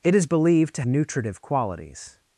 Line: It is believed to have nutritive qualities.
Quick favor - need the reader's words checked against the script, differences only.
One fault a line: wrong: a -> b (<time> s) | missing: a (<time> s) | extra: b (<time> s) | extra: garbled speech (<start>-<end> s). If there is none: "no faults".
missing: have (0.8 s)